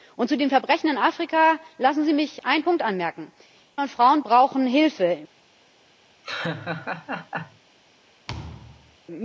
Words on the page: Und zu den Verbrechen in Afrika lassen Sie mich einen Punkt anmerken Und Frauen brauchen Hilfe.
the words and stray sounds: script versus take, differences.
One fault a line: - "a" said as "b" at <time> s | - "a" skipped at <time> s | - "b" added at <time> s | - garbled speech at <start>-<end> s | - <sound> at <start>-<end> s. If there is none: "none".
- laugh at 6.2-7.6 s
- thud at 8.3-9.0 s